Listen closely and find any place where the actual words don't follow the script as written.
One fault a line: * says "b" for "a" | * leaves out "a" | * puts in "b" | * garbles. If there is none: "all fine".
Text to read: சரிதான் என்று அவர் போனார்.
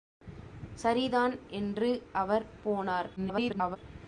* garbles